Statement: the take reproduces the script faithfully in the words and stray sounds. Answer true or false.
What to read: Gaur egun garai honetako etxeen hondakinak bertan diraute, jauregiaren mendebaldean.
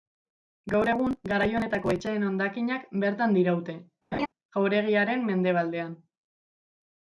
false